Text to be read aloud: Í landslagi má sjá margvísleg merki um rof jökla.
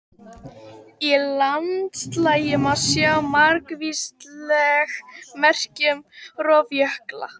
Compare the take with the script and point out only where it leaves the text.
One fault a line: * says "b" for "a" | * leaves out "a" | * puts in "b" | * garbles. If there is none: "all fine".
all fine